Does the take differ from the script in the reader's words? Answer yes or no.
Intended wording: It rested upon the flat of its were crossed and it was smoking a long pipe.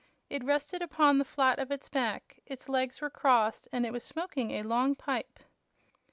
yes